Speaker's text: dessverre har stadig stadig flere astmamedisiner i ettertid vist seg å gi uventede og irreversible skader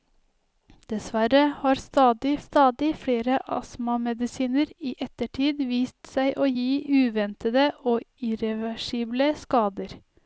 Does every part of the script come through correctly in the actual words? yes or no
yes